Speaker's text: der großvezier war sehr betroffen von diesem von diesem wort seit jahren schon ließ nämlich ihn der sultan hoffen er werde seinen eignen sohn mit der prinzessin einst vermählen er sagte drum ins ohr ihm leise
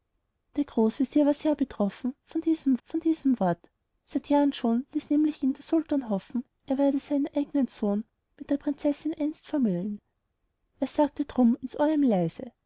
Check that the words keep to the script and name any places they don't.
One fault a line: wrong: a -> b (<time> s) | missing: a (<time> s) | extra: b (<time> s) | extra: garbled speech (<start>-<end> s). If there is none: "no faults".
no faults